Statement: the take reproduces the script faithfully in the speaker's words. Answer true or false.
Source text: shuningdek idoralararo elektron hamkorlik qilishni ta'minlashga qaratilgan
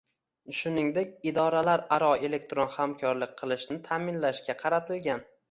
true